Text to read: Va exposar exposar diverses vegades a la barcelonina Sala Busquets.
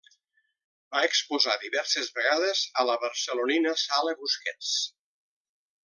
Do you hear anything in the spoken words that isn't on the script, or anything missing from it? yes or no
yes